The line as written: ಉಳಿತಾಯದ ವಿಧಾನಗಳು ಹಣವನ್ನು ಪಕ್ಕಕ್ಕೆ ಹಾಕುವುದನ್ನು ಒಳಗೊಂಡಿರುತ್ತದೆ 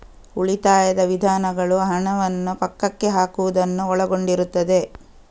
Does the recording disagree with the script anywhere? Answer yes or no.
no